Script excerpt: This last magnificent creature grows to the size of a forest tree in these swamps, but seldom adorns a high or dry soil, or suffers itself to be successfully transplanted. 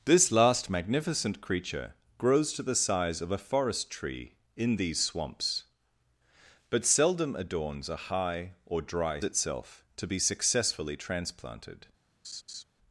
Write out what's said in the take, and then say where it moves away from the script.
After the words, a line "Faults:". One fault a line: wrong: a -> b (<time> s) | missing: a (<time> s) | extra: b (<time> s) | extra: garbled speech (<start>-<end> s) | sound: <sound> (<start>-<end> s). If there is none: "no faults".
This last magnificent creature grows to the size of a forest tree in these swamps, but seldom adorns a high or dry itself to be successfully transplanted.
Faults:
missing: soil or suffers (9.2 s)
sound: laugh (12.2-12.6 s)